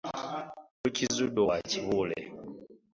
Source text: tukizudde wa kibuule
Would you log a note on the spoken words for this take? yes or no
no